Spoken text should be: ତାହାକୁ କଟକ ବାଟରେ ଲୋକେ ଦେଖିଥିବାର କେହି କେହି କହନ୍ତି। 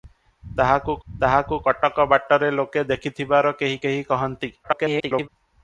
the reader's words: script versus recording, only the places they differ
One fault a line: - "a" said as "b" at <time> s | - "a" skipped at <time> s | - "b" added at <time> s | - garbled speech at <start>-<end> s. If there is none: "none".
- "ତାହାକୁ" added at 1.1 s
- garbled speech at 4.6-5.3 s